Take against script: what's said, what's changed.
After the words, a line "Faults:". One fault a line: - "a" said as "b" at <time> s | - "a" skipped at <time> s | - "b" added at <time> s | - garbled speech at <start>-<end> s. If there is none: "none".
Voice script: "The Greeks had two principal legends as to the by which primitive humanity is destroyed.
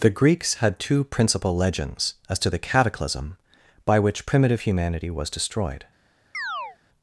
"The Greeks had two principal legends as to the cataclysm by which primitive humanity was destroyed.
Faults:
- "cataclysm" added at 2.6 s
- "is" said as "was" at 5.1 s